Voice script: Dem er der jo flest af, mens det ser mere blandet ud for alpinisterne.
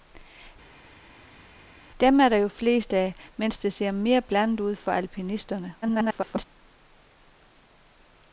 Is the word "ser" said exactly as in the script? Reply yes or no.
yes